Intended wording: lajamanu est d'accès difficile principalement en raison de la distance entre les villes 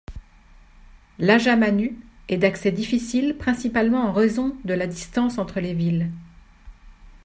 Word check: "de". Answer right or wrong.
right